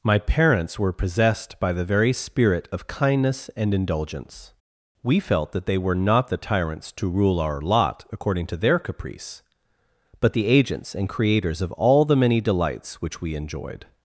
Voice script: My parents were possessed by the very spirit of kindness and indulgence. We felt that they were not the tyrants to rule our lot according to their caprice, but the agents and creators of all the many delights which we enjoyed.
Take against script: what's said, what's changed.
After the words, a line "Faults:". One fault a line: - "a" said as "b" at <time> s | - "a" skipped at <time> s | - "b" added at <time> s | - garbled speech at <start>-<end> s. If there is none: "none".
My parents were possessed by the very spirit of kindness and indulgence. We felt that they were not the tyrants to rule our lot according to their caprice, but the agents and creators of all the many delights which we enjoyed.
Faults:
none